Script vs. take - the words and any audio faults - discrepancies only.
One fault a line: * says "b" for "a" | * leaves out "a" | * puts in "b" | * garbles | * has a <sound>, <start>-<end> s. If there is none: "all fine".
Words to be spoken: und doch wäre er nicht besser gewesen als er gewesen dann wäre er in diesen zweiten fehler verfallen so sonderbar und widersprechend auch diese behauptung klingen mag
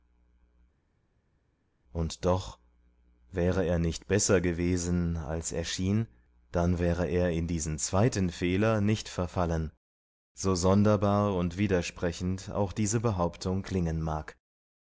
* says "schien" for "gewesen"
* puts in "nicht"